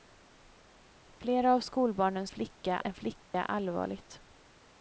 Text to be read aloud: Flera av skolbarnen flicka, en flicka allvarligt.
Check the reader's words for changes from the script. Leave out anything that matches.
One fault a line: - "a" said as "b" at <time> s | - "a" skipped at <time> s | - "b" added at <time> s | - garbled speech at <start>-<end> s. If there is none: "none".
none